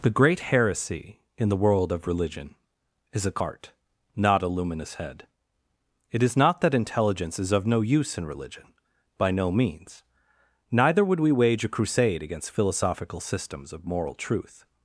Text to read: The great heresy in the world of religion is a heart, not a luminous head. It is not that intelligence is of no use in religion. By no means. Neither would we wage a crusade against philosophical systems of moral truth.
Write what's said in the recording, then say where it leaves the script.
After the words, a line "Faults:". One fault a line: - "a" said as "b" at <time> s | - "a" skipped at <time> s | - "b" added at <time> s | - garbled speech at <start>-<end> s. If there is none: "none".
The great heresy in the world of religion is a heart, not a luminous head. It is not that intelligence is of no use in religion. By no means. Neither would we wage a crusade against philosophical systems of moral truth.
Faults:
none